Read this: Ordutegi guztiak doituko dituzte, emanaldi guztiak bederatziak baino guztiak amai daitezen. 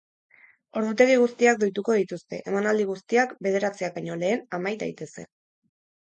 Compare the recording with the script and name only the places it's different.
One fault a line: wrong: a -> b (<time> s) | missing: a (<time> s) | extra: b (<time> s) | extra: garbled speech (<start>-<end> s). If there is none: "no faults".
wrong: guztiak -> lehen (4.2 s)